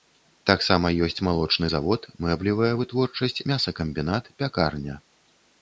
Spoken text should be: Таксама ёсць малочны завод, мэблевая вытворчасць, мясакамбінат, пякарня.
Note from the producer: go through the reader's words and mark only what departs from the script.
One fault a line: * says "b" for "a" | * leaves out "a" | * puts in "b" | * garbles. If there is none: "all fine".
all fine